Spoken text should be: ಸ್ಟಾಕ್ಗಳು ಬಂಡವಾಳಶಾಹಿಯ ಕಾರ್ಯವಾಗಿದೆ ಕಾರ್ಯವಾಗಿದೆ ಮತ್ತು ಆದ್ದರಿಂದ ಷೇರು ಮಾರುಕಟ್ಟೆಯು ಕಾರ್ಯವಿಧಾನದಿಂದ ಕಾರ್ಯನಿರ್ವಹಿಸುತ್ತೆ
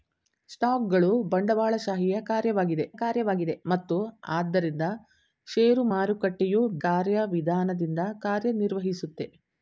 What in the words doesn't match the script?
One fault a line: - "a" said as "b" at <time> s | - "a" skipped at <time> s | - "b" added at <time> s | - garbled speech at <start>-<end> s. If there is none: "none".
none